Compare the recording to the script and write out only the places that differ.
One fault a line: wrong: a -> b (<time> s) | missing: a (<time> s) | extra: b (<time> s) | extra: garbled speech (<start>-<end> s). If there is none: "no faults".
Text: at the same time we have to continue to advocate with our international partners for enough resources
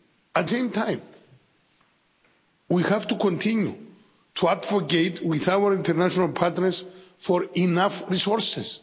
missing: the (0.5 s)